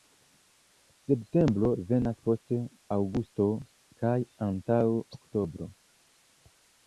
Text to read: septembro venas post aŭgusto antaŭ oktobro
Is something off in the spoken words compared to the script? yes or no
yes